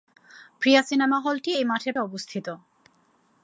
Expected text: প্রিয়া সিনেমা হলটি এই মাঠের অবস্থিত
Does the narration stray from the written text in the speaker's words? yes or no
no